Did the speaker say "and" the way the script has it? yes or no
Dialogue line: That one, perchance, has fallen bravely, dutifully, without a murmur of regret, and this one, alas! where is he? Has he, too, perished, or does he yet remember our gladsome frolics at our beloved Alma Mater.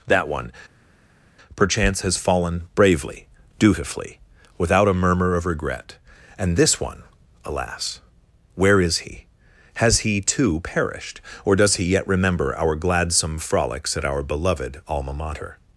yes